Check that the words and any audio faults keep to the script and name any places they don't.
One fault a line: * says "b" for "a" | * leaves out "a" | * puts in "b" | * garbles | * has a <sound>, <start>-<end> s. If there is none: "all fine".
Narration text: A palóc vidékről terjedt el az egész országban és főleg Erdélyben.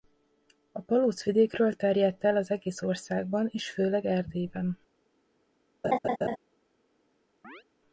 * has a laugh, 5.8-6.4 s
* has a chirp, 7.4-7.6 s